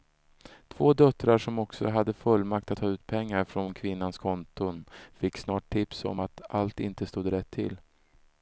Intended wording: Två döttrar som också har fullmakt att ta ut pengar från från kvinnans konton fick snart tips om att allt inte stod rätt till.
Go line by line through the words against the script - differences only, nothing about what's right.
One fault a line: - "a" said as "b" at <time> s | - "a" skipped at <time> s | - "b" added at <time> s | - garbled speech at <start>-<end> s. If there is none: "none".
- "har" said as "hade" at 1.9 s
- "från" skipped at 3.7 s